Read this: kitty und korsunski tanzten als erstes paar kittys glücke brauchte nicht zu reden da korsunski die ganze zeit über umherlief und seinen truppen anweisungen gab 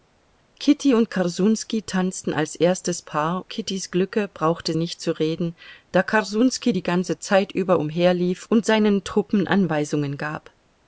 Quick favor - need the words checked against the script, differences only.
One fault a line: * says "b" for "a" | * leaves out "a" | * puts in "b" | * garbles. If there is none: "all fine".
all fine